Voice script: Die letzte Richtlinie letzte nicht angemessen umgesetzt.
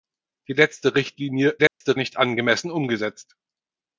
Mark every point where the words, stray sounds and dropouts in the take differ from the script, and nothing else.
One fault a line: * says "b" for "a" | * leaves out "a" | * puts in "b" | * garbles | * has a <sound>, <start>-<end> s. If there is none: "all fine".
* has a dropout, 1.7-1.8 s